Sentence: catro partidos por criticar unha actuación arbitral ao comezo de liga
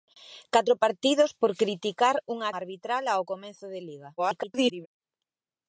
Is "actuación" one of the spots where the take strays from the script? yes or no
yes